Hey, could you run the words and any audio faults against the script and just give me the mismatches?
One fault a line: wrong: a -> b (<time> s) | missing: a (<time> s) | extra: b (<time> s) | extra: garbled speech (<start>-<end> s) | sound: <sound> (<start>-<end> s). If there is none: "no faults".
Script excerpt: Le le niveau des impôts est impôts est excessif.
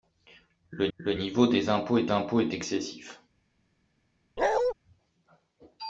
sound: bark (4.4-4.7 s)